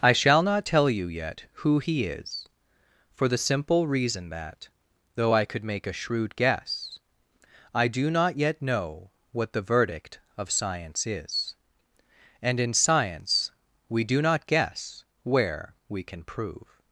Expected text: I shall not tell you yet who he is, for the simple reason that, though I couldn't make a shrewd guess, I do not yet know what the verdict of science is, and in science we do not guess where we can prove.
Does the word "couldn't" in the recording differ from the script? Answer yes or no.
yes